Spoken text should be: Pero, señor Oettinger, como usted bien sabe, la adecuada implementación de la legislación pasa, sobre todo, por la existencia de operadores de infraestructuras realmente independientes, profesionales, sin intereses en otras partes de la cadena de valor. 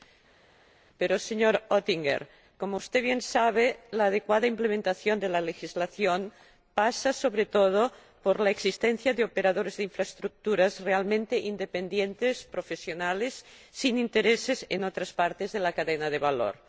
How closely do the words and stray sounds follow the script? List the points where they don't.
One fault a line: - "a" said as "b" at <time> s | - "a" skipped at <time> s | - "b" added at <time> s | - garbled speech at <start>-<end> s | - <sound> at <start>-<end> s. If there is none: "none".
none